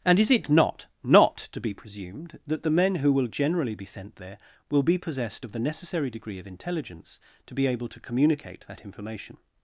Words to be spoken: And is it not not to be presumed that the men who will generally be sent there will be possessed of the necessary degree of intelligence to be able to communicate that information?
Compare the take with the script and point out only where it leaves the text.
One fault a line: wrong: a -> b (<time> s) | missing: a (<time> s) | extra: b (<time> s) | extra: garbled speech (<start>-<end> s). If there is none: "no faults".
no faults